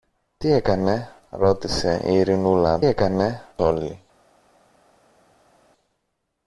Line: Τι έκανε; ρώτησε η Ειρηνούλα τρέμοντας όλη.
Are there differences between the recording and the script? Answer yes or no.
yes